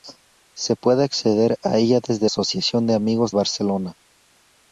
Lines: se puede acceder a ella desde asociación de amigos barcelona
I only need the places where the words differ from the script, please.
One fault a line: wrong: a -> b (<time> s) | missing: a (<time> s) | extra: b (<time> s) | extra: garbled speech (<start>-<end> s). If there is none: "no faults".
no faults